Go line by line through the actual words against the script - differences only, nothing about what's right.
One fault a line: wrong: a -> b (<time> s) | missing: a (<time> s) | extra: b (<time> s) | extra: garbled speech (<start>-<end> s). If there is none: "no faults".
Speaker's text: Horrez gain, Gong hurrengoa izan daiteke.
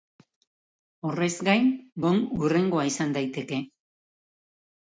no faults